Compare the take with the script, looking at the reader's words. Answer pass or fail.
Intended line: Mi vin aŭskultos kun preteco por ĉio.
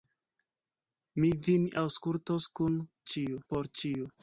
fail